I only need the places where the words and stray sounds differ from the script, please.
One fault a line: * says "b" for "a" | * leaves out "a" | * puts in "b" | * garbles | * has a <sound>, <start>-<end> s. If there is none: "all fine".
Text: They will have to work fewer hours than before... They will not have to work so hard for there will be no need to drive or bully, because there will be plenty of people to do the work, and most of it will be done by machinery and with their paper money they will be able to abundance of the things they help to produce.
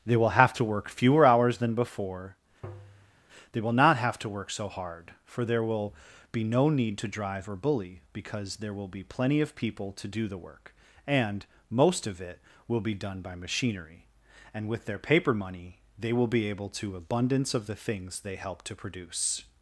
* has a tap, 2.6-3.2 s